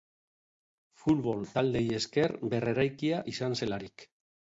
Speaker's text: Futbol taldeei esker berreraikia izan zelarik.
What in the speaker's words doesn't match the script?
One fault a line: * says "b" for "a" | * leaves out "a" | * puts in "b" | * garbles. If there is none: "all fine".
all fine